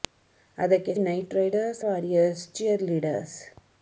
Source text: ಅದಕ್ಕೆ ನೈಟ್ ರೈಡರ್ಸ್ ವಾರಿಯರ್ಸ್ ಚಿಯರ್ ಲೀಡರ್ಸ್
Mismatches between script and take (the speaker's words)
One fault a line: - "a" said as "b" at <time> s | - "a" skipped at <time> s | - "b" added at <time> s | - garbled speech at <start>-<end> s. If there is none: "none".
none